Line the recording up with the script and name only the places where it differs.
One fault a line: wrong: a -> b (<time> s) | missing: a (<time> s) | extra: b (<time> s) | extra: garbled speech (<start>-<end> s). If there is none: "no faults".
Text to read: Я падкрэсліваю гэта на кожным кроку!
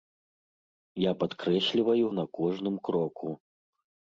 missing: гэта (2.0 s)